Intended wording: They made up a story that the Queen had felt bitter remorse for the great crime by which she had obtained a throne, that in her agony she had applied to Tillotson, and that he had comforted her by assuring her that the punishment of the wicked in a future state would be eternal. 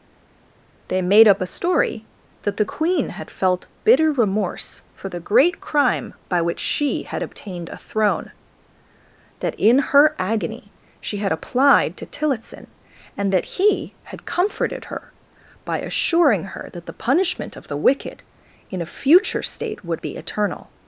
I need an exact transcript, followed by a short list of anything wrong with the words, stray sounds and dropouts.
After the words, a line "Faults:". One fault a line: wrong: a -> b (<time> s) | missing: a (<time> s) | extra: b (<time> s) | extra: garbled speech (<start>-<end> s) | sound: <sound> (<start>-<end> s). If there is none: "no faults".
They made up a story that the Queen had felt bitter remorse for the great crime by which she had obtained a throne, that in her agony she had applied to Tillotson, and that he had comforted her by assuring her that the punishment of the wicked in a future state would be eternal.
Faults:
no faults